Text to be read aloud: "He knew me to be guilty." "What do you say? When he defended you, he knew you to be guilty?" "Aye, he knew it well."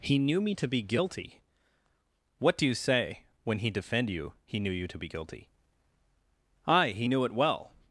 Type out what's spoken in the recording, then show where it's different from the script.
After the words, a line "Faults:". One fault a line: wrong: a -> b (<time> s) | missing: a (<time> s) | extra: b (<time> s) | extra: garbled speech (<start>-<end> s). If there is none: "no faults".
"He knew me to be guilty." "What do you say? When he defend you, he knew you to be guilty?" "Aye, he knew it well."
Faults:
wrong: defended -> defend (3.7 s)